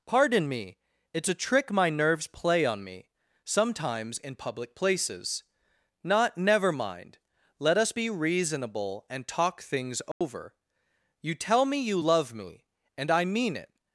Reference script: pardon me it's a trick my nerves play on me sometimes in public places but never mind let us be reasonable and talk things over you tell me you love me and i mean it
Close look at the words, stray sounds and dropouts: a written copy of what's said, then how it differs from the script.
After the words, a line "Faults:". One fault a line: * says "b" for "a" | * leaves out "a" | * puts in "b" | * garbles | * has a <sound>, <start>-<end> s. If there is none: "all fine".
pardon me it's a trick my nerves play on me sometimes in public places not never mind let us be reasonable and talk things over you tell me you love me and i mean it
Faults:
* says "not" for "but"
* has a dropout, 10.1-10.2 s